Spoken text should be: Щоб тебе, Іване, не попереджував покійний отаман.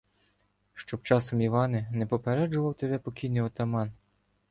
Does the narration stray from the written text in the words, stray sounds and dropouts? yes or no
yes